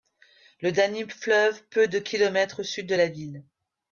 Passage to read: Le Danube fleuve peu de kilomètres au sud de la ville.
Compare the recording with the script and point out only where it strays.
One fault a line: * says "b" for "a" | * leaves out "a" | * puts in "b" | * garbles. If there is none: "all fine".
all fine